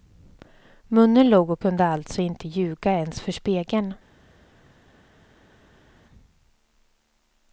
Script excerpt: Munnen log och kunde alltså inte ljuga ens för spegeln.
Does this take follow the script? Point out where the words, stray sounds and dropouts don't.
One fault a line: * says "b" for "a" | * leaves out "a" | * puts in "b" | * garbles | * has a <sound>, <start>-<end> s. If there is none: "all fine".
all fine